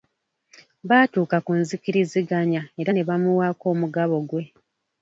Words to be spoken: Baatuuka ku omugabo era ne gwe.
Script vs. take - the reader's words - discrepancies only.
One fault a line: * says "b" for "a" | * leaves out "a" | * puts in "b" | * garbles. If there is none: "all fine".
* says "nzikiriziganya" for "omugabo"
* puts in "bamuwaako omugabo"